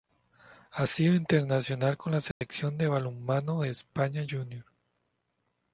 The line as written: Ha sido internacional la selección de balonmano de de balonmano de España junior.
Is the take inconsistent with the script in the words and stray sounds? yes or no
yes